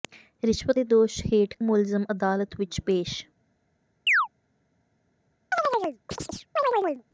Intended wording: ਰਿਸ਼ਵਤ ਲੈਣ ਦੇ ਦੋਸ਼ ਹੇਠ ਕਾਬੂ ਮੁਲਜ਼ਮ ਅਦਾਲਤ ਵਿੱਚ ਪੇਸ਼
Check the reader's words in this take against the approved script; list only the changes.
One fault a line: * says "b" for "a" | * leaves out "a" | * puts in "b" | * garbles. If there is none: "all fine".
* leaves out "ਲੈਣ"
* leaves out "ਕਾਬੂ"